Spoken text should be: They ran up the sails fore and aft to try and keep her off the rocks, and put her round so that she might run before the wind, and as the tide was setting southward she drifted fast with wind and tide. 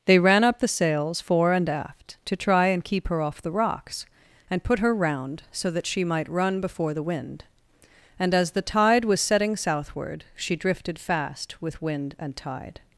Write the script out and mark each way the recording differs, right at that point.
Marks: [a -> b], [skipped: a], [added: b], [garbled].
They ran up the sails fore and aft to try and keep her off the rocks, and put her round so that she might run before the wind, and as the tide was setting southward she drifted fast with wind and tide.